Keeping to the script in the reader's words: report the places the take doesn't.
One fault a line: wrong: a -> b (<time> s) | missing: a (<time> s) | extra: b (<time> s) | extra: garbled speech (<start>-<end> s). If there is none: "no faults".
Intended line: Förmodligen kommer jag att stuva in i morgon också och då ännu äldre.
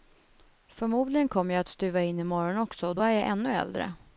extra: är jag (3.0 s)